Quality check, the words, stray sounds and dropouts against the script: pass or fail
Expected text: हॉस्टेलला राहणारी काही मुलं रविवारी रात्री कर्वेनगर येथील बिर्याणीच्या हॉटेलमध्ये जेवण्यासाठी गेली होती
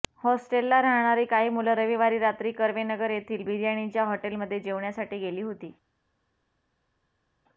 pass